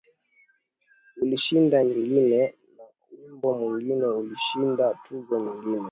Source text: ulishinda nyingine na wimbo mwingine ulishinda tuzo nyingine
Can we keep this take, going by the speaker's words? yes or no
yes